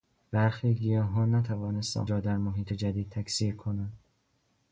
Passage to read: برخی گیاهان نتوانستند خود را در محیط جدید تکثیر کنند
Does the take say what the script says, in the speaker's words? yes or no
no